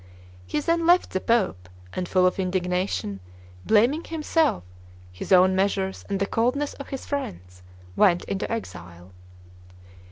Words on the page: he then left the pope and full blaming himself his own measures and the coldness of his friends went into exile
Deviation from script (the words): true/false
true